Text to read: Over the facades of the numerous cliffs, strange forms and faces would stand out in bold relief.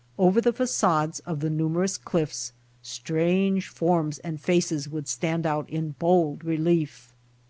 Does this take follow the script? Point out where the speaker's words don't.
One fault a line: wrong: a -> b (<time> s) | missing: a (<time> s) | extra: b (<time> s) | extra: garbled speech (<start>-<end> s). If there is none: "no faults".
no faults